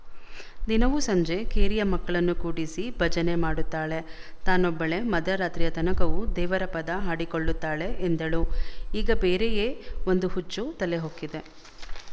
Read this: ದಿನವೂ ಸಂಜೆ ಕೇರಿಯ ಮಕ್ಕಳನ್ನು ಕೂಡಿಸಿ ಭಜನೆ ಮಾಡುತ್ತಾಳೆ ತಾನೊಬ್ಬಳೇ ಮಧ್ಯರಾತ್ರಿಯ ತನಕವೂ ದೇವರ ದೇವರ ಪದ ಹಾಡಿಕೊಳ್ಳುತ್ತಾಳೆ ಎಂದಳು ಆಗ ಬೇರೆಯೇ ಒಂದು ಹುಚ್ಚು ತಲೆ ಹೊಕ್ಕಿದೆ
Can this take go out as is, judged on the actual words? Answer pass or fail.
fail